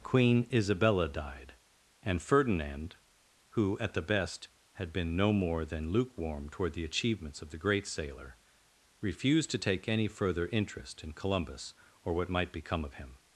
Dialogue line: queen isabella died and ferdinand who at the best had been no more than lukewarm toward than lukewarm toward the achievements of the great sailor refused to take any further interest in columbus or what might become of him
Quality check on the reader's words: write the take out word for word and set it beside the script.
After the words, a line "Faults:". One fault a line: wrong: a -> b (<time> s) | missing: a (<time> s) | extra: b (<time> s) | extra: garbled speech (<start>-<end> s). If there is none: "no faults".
queen isabella died and ferdinand who at the best had been no more than lukewarm toward the achievements of the great sailor refused to take any further interest in columbus or what might become of him
Faults:
missing: than lukewarm toward (6.7 s)